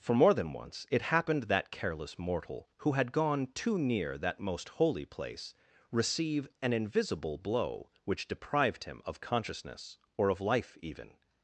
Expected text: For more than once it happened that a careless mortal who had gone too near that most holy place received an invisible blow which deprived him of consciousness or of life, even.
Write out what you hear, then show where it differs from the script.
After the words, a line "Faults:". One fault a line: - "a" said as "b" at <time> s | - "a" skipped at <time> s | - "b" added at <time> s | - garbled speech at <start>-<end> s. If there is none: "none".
For more than once it happened that careless mortal who had gone too near that most holy place receive an invisible blow which deprived him of consciousness or of life, even.
Faults:
- "a" skipped at 1.7 s
- "received" said as "receive" at 5.9 s